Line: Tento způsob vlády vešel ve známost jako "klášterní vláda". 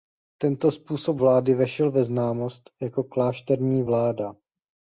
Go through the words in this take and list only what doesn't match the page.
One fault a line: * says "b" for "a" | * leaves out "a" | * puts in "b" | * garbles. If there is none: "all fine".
all fine